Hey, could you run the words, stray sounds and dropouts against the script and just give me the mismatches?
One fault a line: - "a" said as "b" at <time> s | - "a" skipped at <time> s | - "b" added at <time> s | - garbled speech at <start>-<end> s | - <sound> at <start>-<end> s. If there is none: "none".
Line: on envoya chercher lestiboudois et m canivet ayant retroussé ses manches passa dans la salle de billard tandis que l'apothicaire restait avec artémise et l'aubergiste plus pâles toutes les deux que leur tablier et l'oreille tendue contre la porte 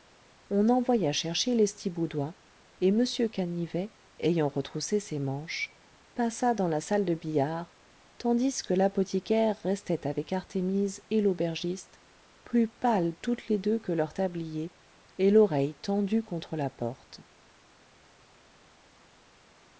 none